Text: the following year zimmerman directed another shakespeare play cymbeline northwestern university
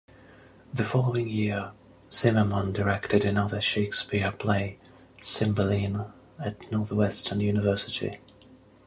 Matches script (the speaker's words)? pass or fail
fail